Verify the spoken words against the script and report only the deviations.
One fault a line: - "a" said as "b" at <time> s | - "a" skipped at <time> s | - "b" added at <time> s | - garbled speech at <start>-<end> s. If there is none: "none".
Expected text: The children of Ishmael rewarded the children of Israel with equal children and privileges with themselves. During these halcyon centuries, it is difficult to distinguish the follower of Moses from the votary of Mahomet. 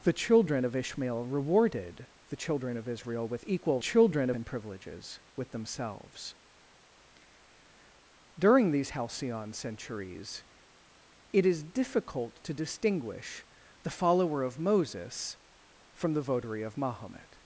none